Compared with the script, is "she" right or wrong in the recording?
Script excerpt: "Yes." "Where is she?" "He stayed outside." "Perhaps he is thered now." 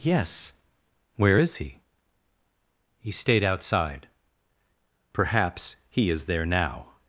wrong